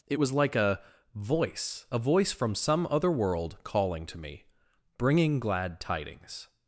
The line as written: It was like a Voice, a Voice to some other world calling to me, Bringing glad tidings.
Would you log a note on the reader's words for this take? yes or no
yes